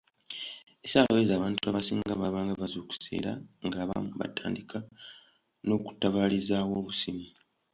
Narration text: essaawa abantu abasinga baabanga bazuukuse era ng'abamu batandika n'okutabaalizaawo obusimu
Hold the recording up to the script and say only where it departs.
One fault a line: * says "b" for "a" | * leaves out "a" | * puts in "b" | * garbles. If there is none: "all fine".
* puts in "ezo"